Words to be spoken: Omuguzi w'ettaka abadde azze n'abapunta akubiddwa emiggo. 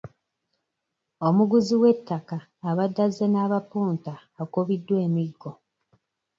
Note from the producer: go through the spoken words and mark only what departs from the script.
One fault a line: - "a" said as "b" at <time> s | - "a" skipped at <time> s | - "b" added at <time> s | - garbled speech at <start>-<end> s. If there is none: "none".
none